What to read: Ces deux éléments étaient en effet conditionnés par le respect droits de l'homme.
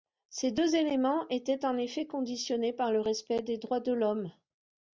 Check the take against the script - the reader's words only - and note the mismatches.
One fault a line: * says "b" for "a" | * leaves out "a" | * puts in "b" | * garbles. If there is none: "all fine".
* puts in "des"